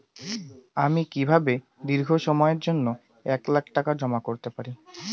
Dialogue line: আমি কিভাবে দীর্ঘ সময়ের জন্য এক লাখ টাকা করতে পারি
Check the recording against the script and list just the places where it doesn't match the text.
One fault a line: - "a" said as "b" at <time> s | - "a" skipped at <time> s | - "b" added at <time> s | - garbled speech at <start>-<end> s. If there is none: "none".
- "জমা" added at 3.9 s